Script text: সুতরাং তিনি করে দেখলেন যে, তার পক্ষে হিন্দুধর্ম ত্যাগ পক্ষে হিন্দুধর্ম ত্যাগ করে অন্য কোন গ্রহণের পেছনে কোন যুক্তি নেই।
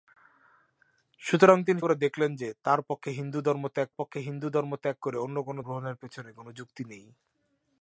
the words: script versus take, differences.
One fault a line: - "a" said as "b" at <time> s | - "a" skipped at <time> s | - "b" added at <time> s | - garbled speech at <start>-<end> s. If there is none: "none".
none